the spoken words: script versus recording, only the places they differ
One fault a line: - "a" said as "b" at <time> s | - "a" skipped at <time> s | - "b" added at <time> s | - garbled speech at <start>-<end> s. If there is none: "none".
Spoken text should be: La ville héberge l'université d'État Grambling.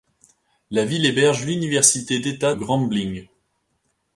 none